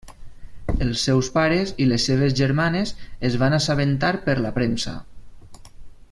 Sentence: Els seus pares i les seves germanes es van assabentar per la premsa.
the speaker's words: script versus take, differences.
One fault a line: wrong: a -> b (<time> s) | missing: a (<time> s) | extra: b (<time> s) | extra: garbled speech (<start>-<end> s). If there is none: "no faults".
no faults